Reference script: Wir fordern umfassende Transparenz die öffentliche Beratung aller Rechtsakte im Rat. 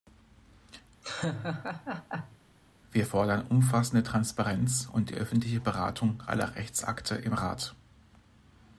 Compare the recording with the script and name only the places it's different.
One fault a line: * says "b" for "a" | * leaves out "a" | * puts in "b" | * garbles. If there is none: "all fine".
* puts in "und"